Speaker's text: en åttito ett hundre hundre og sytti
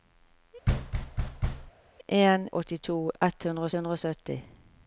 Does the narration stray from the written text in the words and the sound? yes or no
yes